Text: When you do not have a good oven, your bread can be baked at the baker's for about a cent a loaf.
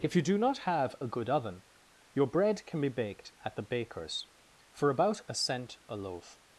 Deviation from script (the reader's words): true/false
true